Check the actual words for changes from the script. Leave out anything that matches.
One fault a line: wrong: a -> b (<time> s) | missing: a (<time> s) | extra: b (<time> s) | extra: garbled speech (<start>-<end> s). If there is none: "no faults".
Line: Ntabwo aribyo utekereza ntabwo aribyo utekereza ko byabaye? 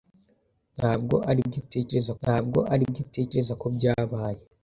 no faults